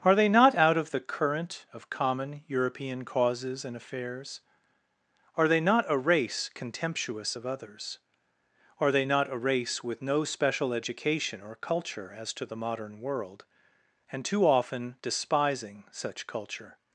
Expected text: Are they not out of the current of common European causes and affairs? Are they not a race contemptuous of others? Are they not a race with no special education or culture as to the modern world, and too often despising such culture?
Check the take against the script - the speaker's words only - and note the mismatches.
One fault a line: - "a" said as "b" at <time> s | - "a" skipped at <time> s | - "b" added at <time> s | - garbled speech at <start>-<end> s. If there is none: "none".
none